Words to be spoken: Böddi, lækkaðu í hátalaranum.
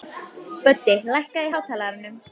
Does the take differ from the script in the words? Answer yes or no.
no